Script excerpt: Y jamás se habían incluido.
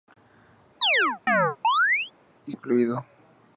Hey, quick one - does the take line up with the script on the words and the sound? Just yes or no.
no